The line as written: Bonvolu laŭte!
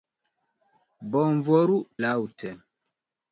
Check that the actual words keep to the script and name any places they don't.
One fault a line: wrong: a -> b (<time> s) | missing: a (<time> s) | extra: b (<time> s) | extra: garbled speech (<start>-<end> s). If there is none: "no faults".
no faults